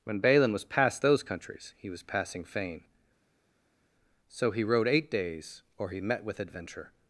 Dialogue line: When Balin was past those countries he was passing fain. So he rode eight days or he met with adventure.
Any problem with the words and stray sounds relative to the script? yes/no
no